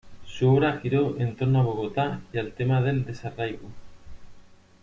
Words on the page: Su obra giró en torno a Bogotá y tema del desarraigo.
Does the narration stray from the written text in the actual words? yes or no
yes